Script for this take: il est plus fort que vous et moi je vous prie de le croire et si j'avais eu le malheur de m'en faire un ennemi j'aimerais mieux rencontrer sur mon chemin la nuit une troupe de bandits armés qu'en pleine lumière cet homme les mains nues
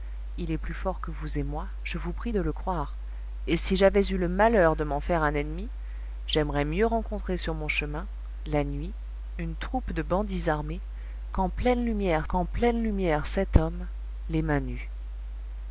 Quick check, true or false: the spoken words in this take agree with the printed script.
false